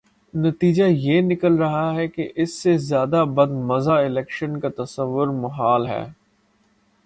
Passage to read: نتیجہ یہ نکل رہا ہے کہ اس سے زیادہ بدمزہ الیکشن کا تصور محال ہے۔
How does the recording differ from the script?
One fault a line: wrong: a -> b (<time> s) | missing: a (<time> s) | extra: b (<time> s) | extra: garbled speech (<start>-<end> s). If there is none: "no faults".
no faults